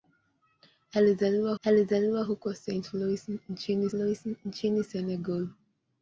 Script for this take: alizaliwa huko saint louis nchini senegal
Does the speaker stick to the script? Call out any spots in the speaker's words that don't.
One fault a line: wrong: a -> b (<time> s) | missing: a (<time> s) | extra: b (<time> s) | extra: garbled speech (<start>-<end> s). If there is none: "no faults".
extra: alizaliwa (1.6 s)
extra: louis nchini (3.9 s)